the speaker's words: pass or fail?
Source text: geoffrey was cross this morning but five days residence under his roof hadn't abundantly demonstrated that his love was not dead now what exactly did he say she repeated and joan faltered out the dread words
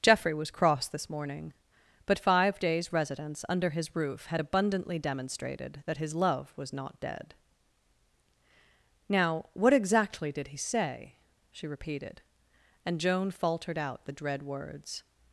fail